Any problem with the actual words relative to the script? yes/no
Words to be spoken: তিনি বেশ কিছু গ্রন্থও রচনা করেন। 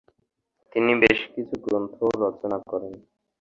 no